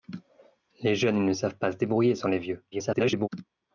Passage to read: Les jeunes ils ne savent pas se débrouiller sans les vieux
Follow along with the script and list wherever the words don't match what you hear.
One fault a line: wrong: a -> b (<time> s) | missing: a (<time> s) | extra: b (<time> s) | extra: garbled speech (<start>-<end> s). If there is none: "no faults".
extra: garbled speech (2.7-3.3 s)